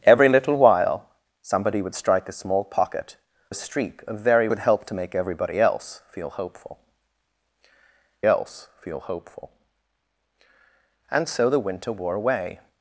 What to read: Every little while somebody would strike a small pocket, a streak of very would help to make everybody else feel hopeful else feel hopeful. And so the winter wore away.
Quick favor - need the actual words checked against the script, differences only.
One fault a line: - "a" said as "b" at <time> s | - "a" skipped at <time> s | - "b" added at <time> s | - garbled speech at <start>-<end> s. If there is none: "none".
none